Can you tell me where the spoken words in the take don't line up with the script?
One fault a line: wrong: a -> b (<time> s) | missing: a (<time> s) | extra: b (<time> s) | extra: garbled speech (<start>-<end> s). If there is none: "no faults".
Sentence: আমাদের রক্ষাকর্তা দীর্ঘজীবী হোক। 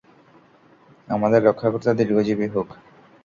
no faults